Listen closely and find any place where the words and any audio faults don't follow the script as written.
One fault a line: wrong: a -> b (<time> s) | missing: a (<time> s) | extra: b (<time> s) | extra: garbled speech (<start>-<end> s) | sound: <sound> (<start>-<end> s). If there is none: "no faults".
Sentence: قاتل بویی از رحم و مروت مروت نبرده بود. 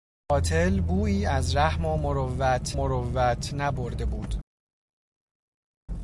no faults